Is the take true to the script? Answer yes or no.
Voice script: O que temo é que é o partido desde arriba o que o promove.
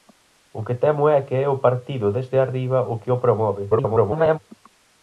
no